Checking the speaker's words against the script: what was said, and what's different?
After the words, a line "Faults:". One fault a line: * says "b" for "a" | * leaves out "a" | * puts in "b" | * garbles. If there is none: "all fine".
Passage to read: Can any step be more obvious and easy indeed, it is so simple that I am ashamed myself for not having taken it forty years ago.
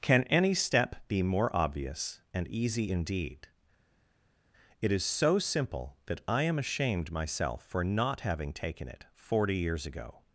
Can any step be more obvious and easy indeed, it is so simple that I am ashamed myself for not having taken it forty years ago.
Faults:
all fine